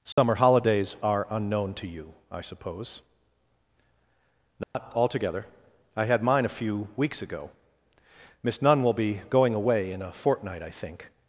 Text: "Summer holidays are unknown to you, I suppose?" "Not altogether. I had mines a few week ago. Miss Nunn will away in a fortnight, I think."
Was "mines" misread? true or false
true